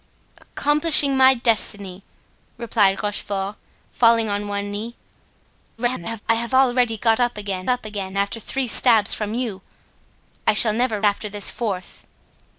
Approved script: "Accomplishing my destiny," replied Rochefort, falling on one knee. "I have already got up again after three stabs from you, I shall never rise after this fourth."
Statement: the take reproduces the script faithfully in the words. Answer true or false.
false